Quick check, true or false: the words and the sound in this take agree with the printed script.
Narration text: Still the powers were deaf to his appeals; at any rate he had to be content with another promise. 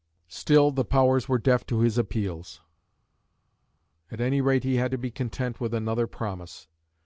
true